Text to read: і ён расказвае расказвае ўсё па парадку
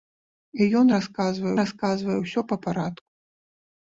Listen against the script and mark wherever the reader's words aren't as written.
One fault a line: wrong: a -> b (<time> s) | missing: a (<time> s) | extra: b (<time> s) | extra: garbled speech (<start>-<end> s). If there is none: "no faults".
no faults